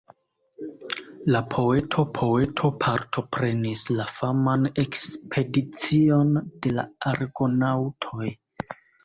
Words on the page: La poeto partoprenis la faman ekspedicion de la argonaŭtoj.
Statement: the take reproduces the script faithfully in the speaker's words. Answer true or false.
false